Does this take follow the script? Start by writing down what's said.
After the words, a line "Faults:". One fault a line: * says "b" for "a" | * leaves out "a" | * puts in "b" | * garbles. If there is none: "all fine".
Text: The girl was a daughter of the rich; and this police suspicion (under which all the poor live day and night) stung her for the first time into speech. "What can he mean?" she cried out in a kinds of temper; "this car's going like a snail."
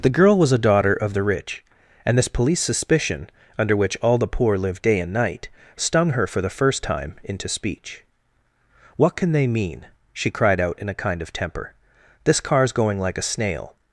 The girl was a daughter of the rich; and this police suspicion (under which all the poor live day and night) stung her for the first time into speech. "What can they mean?" she cried out in a kind of temper; "this car's going like a snail."
Faults:
* says "they" for "he"
* says "kind" for "kinds"